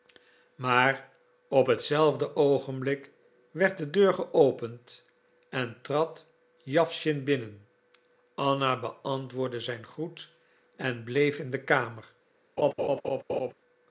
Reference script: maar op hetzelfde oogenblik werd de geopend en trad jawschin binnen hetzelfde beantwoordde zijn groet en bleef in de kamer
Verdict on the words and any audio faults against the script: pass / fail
fail